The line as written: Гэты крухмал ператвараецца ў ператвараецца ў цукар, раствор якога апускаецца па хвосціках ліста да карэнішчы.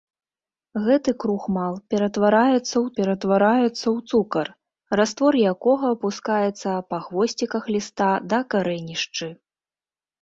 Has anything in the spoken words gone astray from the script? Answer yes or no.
no